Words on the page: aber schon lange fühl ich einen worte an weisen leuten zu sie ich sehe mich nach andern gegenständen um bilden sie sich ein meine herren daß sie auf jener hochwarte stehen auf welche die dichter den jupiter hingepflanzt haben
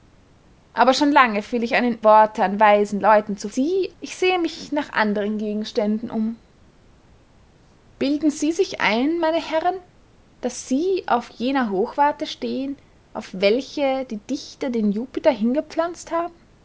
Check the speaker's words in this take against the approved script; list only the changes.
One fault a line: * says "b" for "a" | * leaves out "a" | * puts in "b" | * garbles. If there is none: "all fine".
all fine